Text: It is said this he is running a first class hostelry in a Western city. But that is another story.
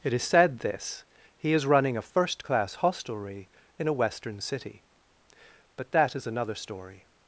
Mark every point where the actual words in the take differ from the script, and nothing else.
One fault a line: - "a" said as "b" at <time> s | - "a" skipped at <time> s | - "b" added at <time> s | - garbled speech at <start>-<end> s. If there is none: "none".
none